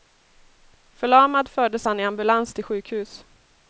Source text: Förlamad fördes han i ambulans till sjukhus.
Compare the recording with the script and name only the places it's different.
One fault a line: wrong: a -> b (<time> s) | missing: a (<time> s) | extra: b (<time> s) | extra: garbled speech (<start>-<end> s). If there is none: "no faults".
no faults